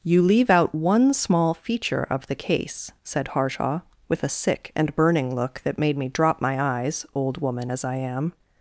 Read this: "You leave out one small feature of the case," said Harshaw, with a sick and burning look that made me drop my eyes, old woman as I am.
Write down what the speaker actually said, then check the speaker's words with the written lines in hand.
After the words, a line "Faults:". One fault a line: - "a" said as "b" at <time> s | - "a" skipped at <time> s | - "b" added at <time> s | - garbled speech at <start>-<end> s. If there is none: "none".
"You leave out one small feature of the case," said Harshaw, with a sick and burning look that made me drop my eyes, old woman as I am.
Faults:
none